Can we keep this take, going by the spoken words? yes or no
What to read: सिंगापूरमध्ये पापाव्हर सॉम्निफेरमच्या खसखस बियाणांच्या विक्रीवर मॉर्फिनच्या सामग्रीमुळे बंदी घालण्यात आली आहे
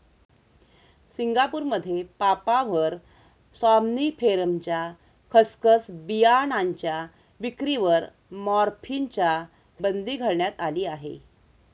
no